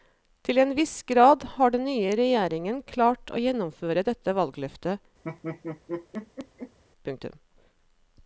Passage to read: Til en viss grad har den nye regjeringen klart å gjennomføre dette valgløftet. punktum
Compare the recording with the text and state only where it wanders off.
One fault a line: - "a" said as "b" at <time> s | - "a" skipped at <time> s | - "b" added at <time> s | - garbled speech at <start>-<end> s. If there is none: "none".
none